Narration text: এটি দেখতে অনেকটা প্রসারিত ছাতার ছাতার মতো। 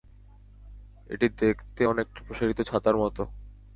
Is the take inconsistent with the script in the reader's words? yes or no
yes